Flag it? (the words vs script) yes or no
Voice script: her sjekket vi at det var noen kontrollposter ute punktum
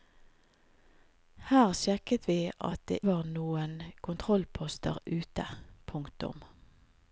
no